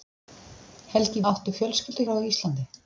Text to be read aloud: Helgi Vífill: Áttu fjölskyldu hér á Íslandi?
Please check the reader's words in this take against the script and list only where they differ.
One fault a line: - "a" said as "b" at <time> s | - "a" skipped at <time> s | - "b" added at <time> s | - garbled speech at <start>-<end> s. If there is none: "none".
- "Vífill" skipped at 1.2 s
- "hér" skipped at 2.0 s